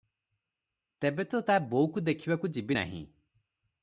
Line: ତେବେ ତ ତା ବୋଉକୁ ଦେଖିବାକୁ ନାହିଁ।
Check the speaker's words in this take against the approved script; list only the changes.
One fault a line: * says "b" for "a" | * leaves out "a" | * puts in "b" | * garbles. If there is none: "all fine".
* puts in "ଯିବି"